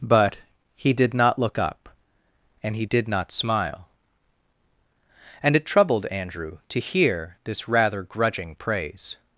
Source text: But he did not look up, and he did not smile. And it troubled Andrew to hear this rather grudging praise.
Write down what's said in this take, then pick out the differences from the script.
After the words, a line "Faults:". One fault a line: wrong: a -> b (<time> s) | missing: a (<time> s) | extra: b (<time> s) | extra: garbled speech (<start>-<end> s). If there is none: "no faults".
But he did not look up, and he did not smile. And it troubled Andrew to hear this rather grudging praise.
Faults:
no faults